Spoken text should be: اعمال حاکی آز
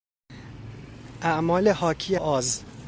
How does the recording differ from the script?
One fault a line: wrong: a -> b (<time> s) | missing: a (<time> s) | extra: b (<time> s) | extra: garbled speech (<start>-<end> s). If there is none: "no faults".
no faults